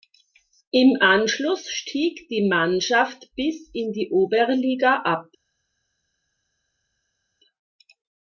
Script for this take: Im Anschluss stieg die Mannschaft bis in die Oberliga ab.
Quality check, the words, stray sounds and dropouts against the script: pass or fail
pass